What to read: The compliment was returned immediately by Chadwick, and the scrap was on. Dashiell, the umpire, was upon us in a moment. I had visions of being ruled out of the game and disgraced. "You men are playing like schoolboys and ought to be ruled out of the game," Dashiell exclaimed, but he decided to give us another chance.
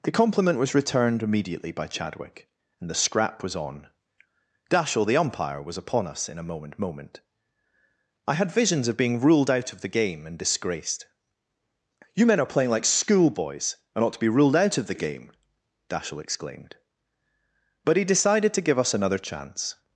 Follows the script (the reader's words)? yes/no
no